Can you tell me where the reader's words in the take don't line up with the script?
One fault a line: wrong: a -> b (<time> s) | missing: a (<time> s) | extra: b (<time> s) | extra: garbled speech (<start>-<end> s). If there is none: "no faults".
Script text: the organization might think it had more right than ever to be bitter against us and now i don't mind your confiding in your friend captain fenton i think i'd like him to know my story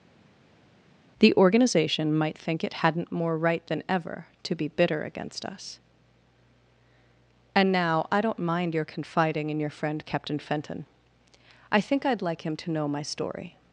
wrong: had -> hadn't (2.7 s)